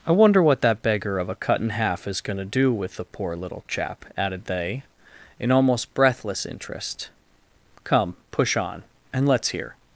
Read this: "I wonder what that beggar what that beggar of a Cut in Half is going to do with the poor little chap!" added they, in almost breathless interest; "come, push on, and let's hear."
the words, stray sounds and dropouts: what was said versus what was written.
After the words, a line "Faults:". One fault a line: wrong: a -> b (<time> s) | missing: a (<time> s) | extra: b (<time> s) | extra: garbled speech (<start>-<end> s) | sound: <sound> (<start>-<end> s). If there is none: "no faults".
"I wonder what that beggar of a Cut in Half is going to do with the poor little chap!" added they, in almost breathless interest; "come, push on, and let's hear."
Faults:
missing: what that beggar (1.2 s)